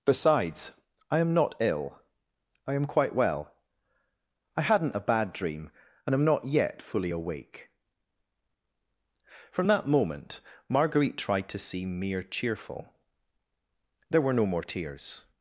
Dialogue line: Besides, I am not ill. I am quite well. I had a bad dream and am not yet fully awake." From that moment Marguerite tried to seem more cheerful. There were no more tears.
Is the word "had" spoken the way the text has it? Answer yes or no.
no